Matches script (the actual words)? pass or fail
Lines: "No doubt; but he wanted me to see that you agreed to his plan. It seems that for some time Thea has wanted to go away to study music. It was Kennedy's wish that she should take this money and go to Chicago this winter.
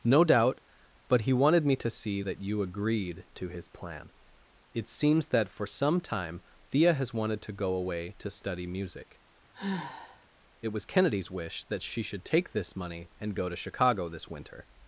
pass